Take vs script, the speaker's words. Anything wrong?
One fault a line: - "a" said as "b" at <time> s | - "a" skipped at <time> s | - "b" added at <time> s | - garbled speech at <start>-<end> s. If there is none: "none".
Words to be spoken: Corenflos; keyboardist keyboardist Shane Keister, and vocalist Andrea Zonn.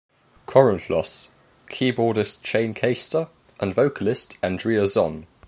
- "keyboardist" skipped at 2.4 s